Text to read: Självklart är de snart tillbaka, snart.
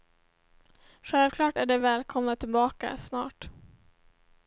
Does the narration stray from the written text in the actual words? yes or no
yes